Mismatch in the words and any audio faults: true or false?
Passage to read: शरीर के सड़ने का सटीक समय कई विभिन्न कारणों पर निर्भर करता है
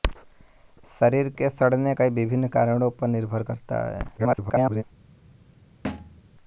true